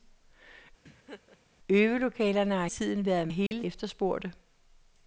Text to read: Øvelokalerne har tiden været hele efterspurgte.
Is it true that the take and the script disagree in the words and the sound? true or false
true